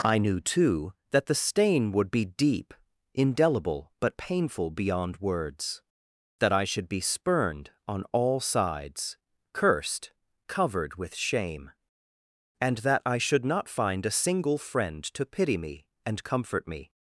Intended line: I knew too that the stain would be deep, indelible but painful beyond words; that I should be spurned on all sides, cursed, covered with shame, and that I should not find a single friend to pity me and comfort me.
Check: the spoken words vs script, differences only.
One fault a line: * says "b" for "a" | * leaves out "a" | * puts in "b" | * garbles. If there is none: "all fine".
all fine